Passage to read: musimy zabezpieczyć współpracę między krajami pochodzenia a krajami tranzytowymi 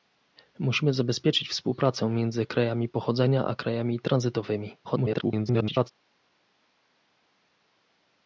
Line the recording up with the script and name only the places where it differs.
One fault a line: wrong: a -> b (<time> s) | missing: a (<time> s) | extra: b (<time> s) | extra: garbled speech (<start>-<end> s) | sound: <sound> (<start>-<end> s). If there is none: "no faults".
extra: garbled speech (4.8-5.9 s)